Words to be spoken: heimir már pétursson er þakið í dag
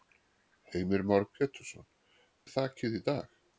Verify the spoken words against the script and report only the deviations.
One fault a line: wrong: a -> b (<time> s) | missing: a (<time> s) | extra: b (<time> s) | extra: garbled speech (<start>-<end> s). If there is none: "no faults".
no faults